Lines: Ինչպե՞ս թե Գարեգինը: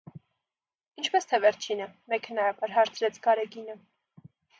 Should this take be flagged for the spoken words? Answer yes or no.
yes